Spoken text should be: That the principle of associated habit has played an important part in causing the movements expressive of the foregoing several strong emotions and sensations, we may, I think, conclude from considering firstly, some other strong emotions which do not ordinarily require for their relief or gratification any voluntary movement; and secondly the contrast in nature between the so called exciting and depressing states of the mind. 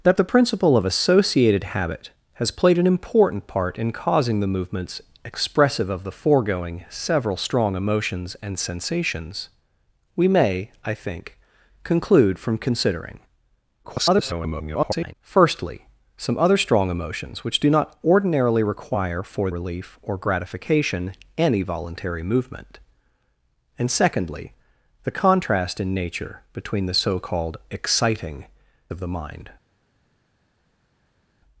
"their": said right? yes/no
no